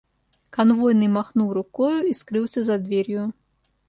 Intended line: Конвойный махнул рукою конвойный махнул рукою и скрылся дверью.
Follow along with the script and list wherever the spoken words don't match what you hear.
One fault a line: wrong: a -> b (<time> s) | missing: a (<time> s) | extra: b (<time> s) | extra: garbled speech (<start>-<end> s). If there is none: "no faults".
missing: конвойный махнул рукою (2.1 s)
extra: за (2.6 s)